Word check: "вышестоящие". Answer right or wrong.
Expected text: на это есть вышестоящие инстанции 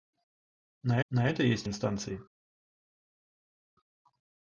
wrong